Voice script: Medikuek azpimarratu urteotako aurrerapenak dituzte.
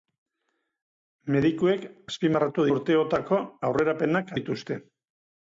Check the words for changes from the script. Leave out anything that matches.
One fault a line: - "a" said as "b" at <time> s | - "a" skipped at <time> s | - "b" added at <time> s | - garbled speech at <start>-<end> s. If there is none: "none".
none